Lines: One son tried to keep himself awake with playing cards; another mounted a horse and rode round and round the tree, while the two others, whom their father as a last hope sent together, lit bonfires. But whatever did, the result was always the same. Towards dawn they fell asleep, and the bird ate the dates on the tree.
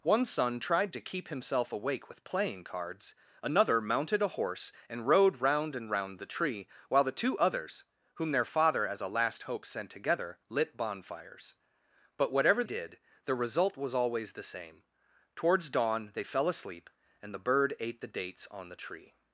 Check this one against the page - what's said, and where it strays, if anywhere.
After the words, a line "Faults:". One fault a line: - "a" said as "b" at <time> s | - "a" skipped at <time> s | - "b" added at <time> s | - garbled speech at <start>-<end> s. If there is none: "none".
One son tried to keep himself awake with playing cards; another mounted a horse and rode round and round the tree, while the two others, whom their father as a last hope sent together, lit bonfires. But whatever did, the result was always the same. Towards dawn they fell asleep, and the bird ate the dates on the tree.
Faults:
none